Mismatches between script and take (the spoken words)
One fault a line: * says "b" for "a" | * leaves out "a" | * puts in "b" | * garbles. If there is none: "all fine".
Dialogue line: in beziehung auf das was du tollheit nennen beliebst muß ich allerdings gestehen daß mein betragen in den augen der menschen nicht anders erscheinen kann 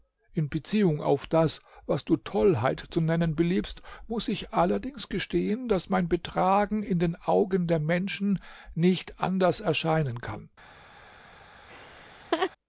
* puts in "zu"